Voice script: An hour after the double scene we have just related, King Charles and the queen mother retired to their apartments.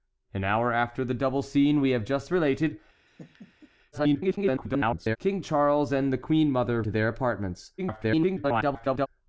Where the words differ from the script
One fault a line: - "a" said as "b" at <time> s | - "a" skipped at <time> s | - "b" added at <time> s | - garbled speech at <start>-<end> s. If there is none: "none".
- garbled speech at 3.9-5.2 s
- "retired" skipped at 6.8 s
- garbled speech at 7.8-9.1 s